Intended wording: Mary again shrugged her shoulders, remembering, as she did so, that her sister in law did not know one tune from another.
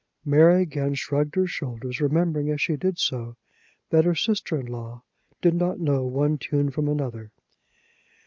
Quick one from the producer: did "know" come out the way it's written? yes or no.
yes